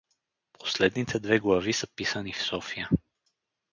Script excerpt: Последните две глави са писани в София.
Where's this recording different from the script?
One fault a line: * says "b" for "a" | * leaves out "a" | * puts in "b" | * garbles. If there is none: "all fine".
all fine